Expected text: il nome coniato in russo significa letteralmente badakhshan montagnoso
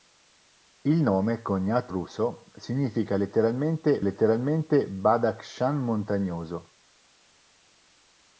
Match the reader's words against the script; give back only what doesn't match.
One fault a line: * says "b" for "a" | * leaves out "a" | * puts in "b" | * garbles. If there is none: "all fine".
* leaves out "in"
* puts in "letteralmente"